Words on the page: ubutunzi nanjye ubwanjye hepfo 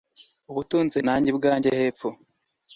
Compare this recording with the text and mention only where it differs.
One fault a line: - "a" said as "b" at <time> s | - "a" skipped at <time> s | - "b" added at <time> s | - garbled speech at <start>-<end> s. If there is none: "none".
none